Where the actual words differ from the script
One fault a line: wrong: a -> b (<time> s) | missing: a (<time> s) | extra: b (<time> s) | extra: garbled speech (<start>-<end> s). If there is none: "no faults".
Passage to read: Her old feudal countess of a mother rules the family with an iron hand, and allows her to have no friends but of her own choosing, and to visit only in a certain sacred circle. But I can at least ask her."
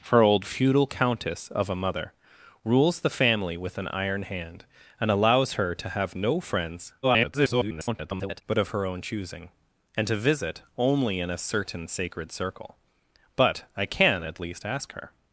extra: garbled speech (7.0-8.4 s)